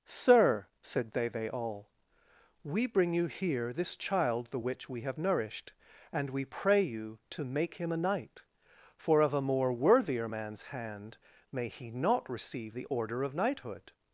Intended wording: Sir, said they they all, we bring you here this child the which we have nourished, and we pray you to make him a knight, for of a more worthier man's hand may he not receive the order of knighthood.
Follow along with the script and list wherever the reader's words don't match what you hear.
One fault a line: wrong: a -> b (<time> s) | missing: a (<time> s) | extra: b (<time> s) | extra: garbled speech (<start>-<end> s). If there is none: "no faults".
no faults